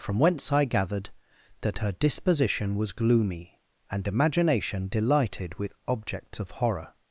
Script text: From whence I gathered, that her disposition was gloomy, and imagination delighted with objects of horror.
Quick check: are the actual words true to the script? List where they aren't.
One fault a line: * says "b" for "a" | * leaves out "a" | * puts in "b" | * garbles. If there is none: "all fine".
all fine